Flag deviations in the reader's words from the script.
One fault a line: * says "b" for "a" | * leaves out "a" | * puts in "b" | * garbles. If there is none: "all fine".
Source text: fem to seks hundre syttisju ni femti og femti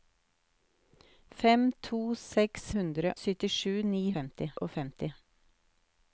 all fine